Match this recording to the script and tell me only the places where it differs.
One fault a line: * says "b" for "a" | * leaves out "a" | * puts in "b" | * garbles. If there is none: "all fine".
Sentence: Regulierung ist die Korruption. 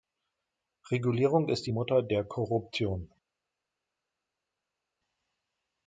* puts in "Mutter der"